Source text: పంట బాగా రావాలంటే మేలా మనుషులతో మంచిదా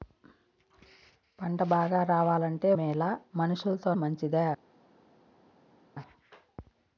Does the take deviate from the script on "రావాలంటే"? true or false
false